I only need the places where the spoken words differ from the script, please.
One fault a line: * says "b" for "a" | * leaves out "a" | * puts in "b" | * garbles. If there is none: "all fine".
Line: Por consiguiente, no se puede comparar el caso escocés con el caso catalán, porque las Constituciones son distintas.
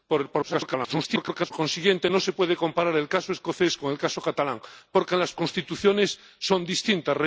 * garbles